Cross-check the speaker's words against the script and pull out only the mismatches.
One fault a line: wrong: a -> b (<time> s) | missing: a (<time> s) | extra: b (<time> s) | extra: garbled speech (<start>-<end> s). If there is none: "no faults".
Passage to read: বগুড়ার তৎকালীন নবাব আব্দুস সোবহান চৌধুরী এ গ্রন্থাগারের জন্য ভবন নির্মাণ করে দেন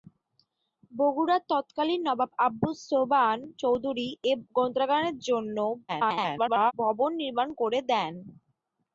extra: garbled speech (5.9-6.7 s)